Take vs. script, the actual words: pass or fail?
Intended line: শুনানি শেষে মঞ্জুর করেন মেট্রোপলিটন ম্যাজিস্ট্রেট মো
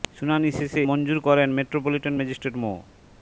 pass